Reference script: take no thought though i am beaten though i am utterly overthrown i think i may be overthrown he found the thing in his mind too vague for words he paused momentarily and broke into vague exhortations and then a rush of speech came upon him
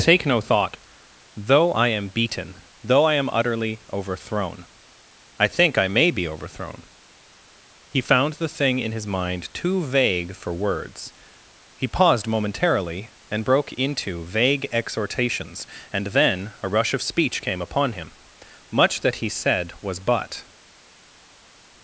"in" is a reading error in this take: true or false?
false